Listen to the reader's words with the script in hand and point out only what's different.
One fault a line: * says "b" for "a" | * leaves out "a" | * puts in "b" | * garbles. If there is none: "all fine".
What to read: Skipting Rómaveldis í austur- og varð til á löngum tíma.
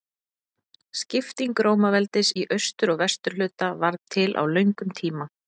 * puts in "vesturhluta"